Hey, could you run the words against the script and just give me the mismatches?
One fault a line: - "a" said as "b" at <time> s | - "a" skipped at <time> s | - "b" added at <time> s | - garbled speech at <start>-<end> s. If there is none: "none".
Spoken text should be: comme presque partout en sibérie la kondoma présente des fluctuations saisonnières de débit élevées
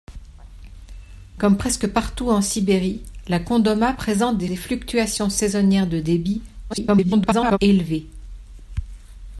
- "des" added at 4.5 s
- garbled speech at 6.7-7.6 s